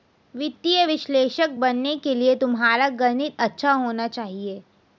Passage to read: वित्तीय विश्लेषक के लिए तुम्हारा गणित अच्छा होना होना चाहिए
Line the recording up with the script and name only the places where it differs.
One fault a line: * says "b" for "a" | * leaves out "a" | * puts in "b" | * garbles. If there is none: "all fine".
* puts in "बनने"
* leaves out "होना"